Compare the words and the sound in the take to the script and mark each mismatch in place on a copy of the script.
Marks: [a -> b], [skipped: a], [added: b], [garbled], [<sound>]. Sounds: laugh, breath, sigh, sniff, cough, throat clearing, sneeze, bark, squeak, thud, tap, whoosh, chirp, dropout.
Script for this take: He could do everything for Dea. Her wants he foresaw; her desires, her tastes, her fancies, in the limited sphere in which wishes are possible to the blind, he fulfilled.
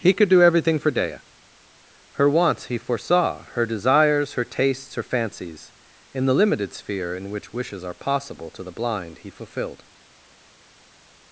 He could do everything for Dea. Her wants he foresaw; her desires, her tastes, her fancies, in the limited sphere in which wishes are possible to the blind, he fulfilled.